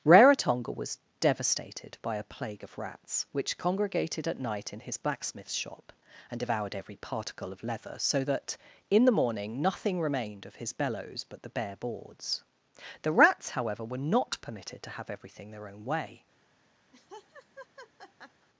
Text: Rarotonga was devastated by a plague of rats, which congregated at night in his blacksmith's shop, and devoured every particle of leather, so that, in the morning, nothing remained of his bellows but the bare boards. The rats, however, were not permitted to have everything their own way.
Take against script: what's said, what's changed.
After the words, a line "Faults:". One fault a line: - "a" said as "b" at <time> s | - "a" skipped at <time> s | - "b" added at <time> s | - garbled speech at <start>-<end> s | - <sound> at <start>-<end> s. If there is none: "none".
Rarotonga was devastated by a plague of rats, which congregated at night in his blacksmith's shop, and devoured every particle of leather, so that, in the morning, nothing remained of his bellows but the bare boards. The rats, however, were not permitted to have everything their own way.
Faults:
- laugh at 16.9-18.5 s